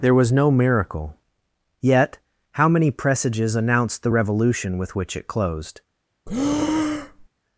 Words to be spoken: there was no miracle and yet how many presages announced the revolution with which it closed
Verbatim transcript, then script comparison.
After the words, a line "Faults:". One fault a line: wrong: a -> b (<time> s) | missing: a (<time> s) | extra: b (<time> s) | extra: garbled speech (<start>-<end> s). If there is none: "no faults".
there was no miracle yet how many presages announced the revolution with which it closed
Faults:
missing: and (1.1 s)